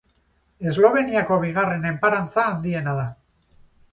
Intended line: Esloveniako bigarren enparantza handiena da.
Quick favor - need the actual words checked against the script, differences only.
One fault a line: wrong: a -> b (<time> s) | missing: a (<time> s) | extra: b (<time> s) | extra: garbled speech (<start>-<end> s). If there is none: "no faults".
no faults